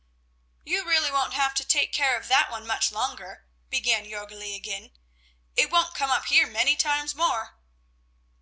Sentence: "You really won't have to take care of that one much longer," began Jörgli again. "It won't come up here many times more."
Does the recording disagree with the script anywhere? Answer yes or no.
no